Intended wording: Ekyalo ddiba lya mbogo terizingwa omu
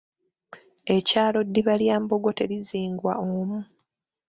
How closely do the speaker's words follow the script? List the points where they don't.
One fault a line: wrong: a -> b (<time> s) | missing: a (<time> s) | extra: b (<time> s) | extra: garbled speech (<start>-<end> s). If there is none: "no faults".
no faults